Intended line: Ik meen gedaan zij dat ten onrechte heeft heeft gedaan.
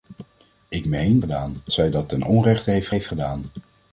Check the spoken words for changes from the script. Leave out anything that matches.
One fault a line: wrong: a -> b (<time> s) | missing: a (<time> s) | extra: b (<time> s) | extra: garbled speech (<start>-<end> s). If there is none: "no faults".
no faults